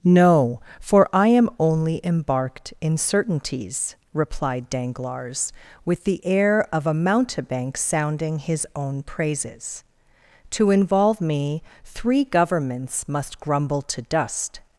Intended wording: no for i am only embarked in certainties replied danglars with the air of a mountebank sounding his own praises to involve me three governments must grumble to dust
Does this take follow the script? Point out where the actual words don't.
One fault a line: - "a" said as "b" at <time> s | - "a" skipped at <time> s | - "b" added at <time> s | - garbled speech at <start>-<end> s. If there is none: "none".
none